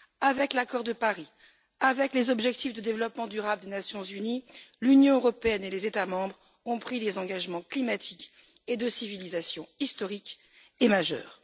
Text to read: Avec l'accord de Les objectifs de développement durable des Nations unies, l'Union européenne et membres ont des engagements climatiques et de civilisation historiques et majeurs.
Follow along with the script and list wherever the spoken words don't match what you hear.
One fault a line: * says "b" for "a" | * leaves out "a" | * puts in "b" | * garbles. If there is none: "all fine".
* puts in "Paris avec"
* puts in "les États"
* puts in "pris"